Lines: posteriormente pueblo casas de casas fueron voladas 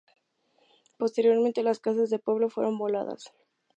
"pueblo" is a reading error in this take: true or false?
true